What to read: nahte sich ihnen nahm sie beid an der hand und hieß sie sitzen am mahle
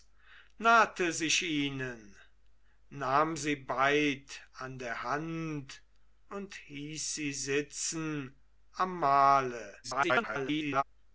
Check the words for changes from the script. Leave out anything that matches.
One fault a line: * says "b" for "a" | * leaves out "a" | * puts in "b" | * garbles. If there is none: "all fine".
* garbles